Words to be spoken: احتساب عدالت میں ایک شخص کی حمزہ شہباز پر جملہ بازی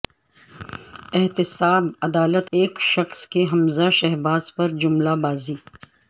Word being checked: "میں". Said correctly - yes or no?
no